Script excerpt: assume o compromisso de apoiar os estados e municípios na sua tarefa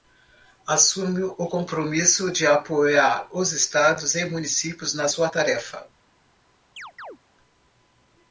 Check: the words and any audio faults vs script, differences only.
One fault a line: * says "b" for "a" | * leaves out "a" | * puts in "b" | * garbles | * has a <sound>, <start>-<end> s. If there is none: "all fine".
* has a chirp, 6.8-7.2 s